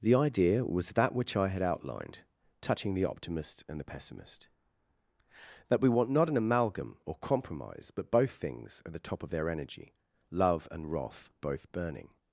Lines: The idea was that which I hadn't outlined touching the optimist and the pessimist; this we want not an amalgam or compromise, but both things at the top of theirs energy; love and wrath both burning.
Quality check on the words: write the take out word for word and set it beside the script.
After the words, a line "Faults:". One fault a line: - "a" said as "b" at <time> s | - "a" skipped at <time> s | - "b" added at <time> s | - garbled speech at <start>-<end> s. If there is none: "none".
The idea was that which I had outlined touching the optimist and the pessimist; that we want not an amalgam or compromise, but both things at the top of their energy; love and wrath both burning.
Faults:
- "hadn't" said as "had" at 1.5 s
- "this" said as "that" at 5.7 s
- "theirs" said as "their" at 9.3 s